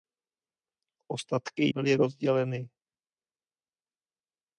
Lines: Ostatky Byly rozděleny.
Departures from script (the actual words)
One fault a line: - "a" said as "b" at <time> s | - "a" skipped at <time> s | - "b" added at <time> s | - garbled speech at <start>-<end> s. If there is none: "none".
none